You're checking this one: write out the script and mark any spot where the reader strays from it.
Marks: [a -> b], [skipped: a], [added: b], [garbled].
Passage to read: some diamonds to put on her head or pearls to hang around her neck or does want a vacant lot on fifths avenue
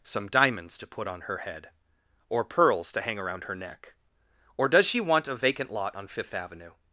some diamonds to put on her head or pearls to hang around her neck or does [added: she] want a vacant lot on [fifths -> fifth] avenue